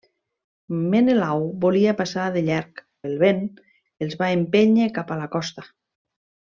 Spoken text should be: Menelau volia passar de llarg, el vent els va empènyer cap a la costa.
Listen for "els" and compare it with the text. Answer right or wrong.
right